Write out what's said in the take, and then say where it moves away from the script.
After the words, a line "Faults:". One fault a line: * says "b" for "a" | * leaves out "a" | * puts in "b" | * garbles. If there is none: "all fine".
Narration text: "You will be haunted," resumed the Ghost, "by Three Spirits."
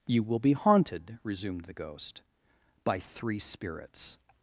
"You will be haunted," resumed the Ghost, "by Three Spirits."
Faults:
all fine